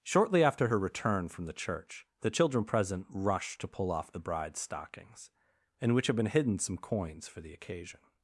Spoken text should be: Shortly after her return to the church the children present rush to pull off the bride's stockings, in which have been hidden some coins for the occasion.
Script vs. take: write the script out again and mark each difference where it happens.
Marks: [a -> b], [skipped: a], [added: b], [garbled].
Shortly after her return [to -> from] the church the children present rush to pull off the bride's stockings, in which have been hidden some coins for the occasion.